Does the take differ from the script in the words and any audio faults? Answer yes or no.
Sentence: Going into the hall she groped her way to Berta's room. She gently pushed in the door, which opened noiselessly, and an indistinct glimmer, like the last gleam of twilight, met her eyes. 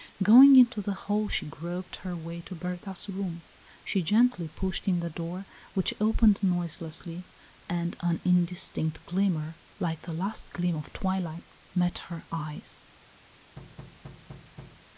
yes